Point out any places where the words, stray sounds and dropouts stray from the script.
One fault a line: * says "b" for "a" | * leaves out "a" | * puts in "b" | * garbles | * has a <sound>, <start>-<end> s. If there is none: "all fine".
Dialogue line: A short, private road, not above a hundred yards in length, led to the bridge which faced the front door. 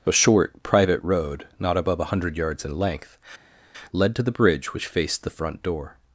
all fine